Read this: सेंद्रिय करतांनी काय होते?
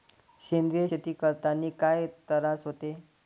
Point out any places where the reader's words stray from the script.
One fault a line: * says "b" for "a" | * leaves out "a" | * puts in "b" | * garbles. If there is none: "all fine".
* puts in "शेती"
* puts in "तरास"